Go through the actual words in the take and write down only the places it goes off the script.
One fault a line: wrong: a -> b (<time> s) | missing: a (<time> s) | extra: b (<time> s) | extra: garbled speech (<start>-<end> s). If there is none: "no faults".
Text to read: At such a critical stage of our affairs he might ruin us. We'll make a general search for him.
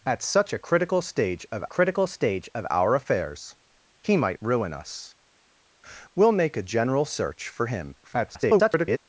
extra: critical stage of (1.6 s)
extra: garbled speech (8.0-9.0 s)